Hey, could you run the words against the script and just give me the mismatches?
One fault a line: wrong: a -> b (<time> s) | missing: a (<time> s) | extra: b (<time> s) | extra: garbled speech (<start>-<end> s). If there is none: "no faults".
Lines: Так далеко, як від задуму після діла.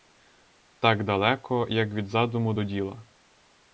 wrong: після -> до (2.5 s)